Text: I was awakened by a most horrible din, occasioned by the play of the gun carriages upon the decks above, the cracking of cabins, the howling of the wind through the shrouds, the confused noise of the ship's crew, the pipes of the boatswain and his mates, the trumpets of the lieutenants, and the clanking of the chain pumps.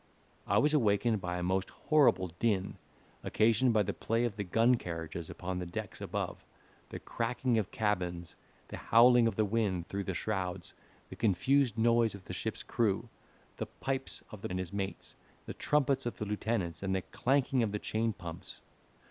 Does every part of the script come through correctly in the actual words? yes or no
no